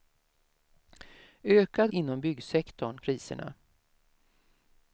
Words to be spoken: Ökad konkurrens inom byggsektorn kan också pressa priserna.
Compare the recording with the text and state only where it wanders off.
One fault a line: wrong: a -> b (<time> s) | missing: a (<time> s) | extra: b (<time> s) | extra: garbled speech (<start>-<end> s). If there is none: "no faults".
missing: konkurrens (1.9 s)
missing: kan också pressa (3.0 s)